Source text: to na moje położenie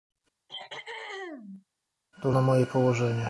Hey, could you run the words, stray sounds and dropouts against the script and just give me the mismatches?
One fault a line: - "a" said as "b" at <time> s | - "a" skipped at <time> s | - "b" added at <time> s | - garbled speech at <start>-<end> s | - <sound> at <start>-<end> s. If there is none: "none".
- throat clearing at 0.5-1.7 s